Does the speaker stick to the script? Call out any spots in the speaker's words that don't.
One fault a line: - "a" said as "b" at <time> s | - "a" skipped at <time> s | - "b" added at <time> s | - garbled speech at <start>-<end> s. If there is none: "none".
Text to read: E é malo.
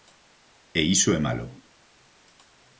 - "iso" added at 0.9 s